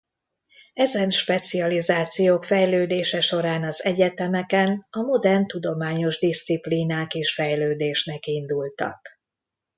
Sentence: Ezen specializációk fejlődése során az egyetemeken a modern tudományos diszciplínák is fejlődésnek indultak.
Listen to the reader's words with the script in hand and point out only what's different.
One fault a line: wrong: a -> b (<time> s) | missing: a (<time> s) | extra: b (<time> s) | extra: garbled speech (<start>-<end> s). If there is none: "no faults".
no faults